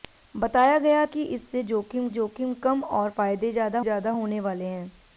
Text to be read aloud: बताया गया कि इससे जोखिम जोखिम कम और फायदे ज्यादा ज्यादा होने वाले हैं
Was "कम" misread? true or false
false